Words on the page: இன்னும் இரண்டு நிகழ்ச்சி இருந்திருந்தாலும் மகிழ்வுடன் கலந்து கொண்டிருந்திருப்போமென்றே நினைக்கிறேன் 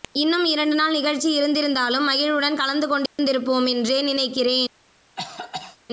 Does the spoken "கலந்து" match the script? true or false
true